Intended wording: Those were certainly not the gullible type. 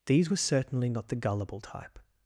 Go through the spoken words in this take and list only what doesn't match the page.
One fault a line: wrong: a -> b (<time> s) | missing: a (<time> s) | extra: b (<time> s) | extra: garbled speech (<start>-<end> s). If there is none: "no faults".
wrong: Those -> These (0.1 s)